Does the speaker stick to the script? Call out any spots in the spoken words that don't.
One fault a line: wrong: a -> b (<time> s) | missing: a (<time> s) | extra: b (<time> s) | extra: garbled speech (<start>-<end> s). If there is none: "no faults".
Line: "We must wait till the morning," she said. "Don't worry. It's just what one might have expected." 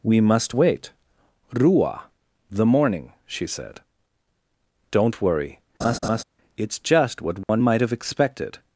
wrong: till -> rua (1.5 s)